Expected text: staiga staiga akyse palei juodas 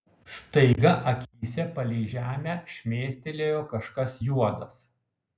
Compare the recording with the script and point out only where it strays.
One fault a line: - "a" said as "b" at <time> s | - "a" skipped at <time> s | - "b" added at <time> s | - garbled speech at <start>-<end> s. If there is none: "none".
- "staiga" skipped at 0.9 s
- "žemę šmėstelėjo kažkas" added at 2.1 s